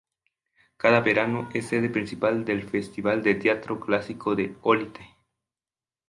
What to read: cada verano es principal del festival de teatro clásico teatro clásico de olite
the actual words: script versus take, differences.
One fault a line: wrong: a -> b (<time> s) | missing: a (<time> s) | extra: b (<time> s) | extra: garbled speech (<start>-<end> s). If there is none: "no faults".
extra: sede (1.7 s)
missing: teatro clásico (4.3 s)